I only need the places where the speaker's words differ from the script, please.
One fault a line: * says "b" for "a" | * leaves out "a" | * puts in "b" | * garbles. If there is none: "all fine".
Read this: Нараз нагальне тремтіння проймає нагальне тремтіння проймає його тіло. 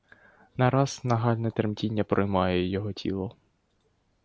* leaves out "нагальне тремтіння проймає"